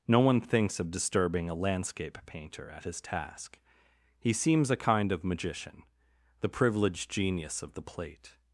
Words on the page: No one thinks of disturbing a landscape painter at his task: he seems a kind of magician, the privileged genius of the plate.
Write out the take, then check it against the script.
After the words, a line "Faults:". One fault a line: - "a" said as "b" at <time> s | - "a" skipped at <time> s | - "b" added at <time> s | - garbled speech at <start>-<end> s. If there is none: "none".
No one thinks of disturbing a landscape painter at his task: he seems a kind of magician, the privileged genius of the plate.
Faults:
none